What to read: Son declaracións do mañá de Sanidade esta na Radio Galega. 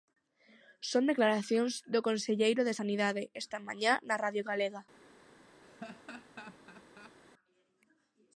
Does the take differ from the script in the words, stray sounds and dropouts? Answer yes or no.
yes